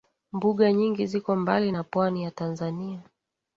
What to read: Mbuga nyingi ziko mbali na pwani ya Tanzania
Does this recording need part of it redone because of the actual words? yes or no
no